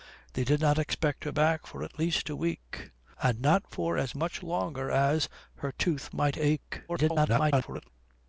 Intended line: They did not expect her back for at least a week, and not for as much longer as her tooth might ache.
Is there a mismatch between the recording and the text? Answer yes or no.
yes